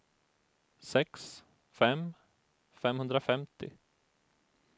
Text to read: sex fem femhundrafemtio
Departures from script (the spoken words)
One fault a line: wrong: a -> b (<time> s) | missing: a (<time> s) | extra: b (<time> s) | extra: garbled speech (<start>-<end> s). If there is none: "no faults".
no faults